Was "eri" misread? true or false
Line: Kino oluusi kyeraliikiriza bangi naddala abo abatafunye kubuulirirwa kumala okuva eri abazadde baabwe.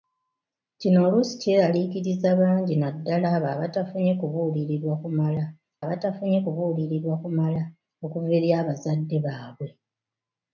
false